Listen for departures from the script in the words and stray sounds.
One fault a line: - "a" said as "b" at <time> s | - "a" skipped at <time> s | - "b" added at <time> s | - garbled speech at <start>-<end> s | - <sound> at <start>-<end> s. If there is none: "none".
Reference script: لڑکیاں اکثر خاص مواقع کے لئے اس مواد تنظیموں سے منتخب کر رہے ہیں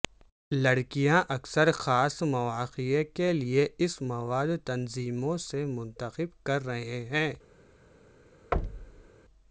- thud at 8.5-9.1 s